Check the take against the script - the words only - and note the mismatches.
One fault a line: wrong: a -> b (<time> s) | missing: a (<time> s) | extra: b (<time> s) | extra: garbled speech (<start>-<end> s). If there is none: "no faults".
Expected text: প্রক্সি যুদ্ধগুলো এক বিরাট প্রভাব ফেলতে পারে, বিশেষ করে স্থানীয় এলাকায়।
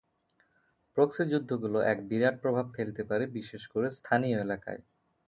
no faults